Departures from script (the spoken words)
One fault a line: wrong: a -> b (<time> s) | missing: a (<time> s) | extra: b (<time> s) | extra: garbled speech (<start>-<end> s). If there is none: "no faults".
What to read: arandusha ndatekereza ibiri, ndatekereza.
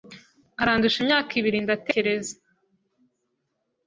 wrong: ndatekereza -> imyaka (1.0 s)